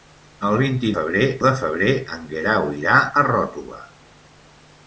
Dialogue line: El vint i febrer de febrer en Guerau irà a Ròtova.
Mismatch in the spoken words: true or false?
false